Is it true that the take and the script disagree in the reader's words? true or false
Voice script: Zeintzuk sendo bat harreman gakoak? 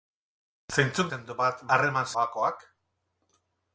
false